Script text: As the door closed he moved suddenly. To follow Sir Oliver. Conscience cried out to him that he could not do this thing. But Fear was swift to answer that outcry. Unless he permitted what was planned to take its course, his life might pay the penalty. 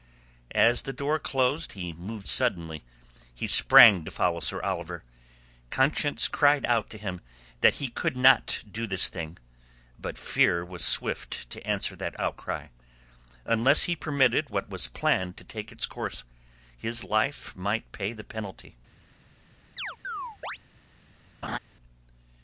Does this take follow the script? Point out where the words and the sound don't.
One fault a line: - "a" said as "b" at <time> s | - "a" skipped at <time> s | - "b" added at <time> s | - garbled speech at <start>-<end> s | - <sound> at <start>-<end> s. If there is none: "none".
- "He sprang" added at 3.4 s
- chirp at 19.8-20.6 s
- laugh at 21.4-21.6 s